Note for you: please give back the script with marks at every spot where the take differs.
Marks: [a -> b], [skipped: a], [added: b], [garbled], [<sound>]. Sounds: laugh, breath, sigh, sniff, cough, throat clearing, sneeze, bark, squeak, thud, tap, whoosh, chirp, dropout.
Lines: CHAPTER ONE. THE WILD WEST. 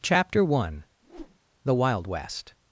CHAPTER ONE. [whoosh] THE WILD WEST.